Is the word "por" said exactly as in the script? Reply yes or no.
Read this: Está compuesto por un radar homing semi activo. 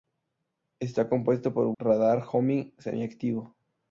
yes